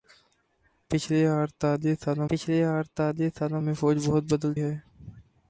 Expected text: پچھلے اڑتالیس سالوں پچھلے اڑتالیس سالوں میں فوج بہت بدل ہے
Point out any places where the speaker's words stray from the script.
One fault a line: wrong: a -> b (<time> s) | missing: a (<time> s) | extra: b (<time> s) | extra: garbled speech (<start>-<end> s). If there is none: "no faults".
no faults